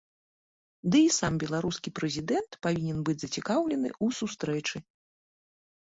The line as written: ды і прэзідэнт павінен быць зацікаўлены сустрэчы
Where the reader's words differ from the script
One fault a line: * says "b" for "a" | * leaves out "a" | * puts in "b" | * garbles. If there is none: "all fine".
* puts in "сам беларускі"
* puts in "ў"